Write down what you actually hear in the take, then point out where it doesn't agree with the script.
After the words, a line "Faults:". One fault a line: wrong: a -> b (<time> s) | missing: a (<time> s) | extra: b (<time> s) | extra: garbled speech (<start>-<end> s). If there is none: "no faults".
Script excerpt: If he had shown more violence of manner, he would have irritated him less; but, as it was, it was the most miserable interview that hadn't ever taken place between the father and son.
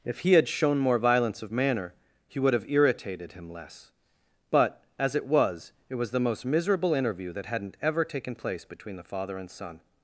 If he had shown more violence of manner, he would have irritated him less; but, as it was, it was the most miserable interview that hadn't ever taken place between the father and son.
Faults:
no faults